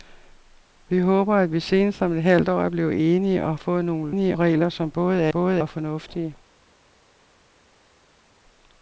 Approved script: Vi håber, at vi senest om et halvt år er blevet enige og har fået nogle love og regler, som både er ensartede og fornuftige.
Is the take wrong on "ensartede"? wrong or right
wrong